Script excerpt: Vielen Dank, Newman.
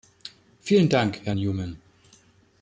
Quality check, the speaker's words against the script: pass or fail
fail